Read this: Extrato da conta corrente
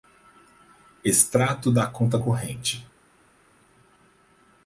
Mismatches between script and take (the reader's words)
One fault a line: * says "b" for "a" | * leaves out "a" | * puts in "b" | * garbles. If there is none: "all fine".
all fine